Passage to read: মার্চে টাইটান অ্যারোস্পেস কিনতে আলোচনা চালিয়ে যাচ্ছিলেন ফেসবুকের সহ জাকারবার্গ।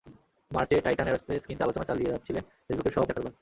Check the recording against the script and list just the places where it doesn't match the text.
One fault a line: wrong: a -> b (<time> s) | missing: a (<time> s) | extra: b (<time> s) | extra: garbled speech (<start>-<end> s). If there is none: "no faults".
no faults